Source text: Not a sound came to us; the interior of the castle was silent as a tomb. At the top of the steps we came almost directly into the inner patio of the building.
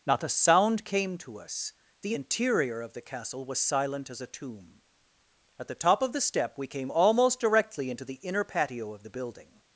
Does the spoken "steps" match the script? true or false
false